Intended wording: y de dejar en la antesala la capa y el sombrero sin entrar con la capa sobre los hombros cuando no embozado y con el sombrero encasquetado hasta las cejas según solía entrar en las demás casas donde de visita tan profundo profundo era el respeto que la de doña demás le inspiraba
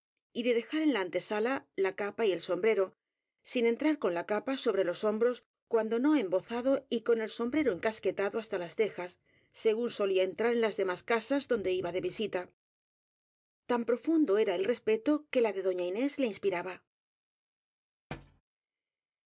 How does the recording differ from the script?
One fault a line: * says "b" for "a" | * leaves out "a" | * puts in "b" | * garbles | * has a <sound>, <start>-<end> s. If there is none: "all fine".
* puts in "iba"
* leaves out "profundo"
* says "inés" for "demás"
* has a thud, 18.1-18.4 s